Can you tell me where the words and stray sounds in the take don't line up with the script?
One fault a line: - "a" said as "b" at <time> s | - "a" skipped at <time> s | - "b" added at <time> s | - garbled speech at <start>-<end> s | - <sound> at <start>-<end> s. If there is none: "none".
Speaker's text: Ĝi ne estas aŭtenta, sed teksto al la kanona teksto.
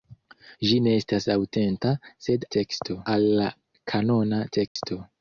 - dropout at 4.7-4.8 s